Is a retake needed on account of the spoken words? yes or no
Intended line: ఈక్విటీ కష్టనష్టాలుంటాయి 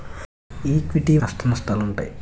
no